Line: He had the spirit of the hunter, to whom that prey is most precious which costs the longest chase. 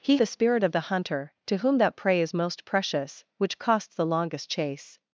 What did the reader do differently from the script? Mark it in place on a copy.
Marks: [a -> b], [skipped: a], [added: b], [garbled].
He [skipped: had] the spirit of the hunter, to whom that prey is most precious which costs the longest chase.